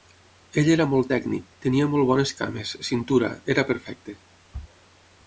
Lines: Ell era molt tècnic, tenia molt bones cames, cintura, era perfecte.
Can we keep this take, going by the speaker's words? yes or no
yes